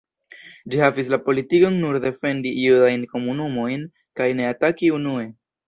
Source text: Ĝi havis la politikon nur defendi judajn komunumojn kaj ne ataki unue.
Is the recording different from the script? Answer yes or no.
no